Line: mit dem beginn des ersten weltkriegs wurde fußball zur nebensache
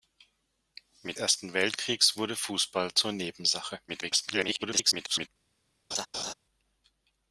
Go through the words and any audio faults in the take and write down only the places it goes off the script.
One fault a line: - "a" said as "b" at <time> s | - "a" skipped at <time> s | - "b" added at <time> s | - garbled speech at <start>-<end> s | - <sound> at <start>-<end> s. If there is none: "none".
- "dem beginn des" skipped at 1.2 s
- garbled speech at 3.9-5.3 s
- laugh at 5.9-6.3 s